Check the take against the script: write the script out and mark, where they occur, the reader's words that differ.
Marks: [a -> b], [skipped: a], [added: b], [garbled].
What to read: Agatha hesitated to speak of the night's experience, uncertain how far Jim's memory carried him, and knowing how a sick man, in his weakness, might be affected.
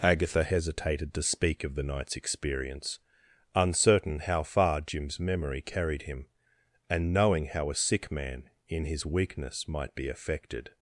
Agatha hesitated to speak of the night's experience, uncertain how far Jim's memory carried him, and knowing how a sick man, in his weakness, might be affected.